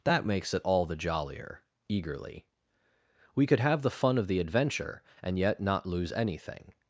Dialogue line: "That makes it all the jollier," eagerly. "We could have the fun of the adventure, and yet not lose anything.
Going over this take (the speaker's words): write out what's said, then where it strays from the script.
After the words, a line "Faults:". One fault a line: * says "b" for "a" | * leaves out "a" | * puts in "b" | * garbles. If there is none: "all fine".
"That makes it all the jollier," eagerly. "We could have the fun of the adventure, and yet not lose anything.
Faults:
all fine